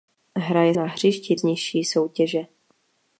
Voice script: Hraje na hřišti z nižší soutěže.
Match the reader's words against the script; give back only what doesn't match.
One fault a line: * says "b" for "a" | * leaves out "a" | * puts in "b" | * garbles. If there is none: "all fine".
all fine